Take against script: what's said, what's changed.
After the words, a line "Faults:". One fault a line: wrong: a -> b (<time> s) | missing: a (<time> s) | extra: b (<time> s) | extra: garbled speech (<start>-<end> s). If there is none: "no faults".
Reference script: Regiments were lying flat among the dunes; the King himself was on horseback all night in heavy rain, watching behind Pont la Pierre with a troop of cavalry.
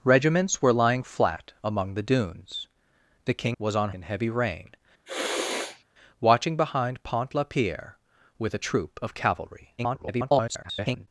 Regiments were lying flat among the dunes; the King was on in heavy rain, watching behind Pont la Pierre with a troop of cavalry. [garbled]
Faults:
missing: himself (3.6 s)
missing: horseback all night (3.9 s)
extra: garbled speech (9.8-11.1 s)